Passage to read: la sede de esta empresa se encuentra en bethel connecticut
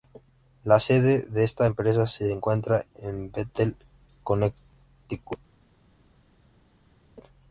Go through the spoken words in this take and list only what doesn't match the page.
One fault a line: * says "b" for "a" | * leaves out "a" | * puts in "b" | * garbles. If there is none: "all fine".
all fine